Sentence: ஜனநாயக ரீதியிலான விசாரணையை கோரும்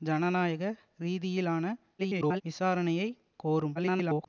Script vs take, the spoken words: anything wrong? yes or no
yes